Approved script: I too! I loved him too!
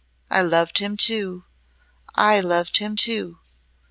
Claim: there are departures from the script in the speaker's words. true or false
true